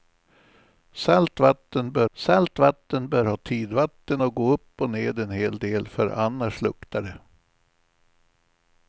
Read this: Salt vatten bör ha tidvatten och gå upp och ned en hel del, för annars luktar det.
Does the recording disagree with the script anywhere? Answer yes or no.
yes